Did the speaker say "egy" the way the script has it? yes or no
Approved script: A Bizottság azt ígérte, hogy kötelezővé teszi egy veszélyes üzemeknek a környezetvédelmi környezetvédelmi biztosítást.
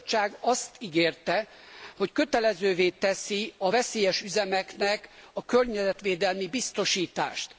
no